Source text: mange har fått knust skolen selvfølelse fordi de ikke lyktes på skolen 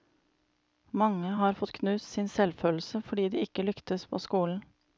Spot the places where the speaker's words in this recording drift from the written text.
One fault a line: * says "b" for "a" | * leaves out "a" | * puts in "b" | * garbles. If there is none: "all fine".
* says "sin" for "skolen"